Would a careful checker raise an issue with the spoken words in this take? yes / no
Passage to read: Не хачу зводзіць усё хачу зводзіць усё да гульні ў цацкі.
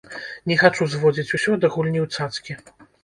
yes